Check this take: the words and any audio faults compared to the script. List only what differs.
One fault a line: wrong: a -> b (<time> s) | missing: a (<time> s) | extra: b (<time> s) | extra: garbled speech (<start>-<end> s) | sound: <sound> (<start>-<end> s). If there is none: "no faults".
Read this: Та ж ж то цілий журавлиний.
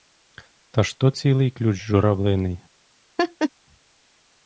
missing: ж (1.0 s)
extra: ключ (1.5 s)
sound: laugh (3.2-3.5 s)